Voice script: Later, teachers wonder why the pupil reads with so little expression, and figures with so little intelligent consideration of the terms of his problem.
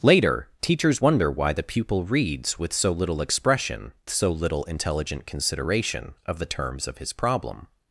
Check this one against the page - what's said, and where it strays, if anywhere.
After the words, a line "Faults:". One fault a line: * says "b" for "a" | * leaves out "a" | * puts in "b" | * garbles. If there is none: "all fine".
Later, teachers wonder why the pupil reads with so little expression, so little intelligent consideration of the terms of his problem.
Faults:
* leaves out "and figures with"